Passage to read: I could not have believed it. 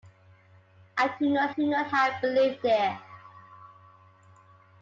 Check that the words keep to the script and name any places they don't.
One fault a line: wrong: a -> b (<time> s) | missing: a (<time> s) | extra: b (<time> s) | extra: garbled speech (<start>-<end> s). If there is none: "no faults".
extra: could not (1.5 s)